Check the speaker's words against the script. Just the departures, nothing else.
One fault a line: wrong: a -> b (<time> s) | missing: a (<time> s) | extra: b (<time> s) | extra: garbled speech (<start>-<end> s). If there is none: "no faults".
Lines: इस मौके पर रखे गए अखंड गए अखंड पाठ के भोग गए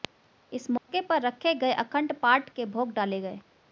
missing: गए अखंड (2.1 s)
extra: डाले (2.9 s)